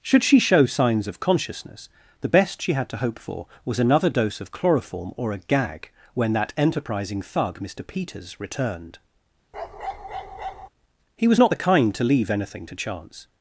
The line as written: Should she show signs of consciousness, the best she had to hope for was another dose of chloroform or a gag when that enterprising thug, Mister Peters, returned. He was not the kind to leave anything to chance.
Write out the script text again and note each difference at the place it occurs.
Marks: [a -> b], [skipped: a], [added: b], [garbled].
Should she show signs of consciousness, the best she had to hope for was another dose of chloroform or a gag when that enterprising thug, Mister Peters, returned. He was not the kind to leave anything to chance.